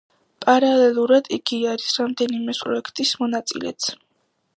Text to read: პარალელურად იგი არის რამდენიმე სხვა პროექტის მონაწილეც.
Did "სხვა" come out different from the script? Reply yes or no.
yes